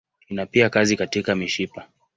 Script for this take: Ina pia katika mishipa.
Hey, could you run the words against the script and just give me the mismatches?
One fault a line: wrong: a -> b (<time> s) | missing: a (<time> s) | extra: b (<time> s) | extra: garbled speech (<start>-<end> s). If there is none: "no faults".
extra: kazi (0.7 s)